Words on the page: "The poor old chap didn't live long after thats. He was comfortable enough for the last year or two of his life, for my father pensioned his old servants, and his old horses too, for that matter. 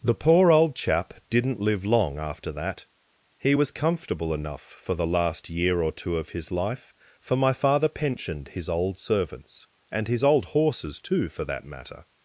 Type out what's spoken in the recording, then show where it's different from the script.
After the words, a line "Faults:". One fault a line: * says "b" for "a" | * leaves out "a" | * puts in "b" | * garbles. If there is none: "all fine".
"The poor old chap didn't live long after that. He was comfortable enough for the last year or two of his life, for my father pensioned his old servants, and his old horses too, for that matter.
Faults:
* says "that" for "thats"